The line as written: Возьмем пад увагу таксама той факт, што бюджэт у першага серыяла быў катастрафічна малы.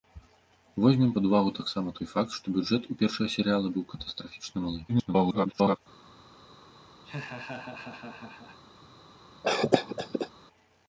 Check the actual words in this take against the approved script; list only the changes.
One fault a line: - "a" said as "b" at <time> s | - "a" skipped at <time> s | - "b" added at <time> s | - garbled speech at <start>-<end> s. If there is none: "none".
- garbled speech at 4.9-5.8 s